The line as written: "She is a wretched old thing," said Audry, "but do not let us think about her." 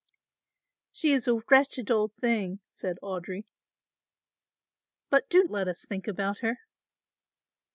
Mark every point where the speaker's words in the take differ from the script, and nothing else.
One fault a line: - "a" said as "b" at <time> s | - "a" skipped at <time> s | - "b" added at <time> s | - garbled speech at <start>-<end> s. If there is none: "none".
- "not" skipped at 5.4 s